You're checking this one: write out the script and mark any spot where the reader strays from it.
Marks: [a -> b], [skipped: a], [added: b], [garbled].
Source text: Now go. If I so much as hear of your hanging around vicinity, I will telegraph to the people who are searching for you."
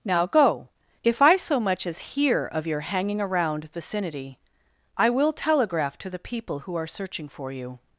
Now go. If I so much as hear of your hanging around vicinity, I will telegraph to the people who are searching for you."